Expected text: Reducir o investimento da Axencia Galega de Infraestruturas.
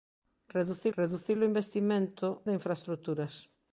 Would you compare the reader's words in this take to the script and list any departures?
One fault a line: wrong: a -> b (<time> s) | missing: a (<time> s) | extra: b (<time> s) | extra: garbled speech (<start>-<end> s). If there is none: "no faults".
extra: reducir (1.0 s)
missing: da Axencia Galega (2.4 s)